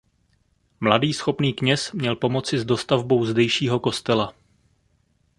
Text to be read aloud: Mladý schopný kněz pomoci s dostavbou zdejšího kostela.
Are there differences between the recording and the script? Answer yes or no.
yes